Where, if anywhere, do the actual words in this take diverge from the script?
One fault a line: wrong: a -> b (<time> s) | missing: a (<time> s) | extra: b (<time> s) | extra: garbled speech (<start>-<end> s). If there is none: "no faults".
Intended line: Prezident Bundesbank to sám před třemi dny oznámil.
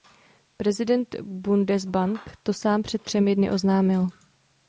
no faults